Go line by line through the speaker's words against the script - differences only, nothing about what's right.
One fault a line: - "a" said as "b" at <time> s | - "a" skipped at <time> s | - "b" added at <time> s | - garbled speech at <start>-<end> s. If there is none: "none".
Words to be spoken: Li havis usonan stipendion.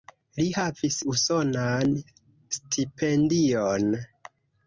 none